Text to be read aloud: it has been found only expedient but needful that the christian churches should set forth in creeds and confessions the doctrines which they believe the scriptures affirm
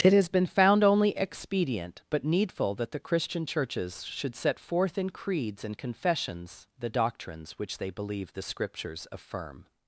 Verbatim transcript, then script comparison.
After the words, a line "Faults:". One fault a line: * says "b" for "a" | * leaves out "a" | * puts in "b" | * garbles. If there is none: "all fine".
it has been found only expedient but needful that the christian churches should set forth in creeds and confessions the doctrines which they believe the scriptures affirm
Faults:
all fine